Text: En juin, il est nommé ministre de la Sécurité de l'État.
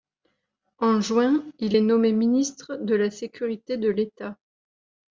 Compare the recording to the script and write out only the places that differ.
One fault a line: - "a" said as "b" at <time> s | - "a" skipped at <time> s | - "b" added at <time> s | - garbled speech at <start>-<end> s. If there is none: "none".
none